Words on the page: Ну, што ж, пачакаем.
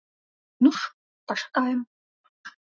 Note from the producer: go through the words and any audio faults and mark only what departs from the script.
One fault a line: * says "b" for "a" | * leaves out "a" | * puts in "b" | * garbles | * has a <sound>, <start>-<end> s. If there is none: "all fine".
* leaves out "што"